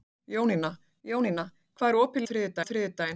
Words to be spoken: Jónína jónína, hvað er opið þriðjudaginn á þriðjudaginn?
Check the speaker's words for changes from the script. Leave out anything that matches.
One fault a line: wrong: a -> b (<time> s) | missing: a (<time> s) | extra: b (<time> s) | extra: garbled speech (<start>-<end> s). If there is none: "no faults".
no faults